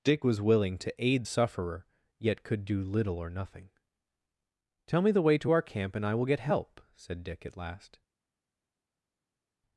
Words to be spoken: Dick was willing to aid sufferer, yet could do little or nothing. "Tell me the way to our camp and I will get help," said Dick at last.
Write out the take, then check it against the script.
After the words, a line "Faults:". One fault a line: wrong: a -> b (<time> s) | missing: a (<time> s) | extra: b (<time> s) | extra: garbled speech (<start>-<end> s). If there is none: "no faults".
Dick was willing to aid sufferer, yet could do little or nothing. "Tell me the way to our camp and I will get help," said Dick at last.
Faults:
no faults